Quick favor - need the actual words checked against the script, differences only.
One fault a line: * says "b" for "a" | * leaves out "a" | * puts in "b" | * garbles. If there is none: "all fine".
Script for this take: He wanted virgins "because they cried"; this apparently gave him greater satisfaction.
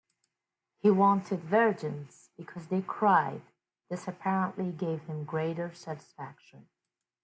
all fine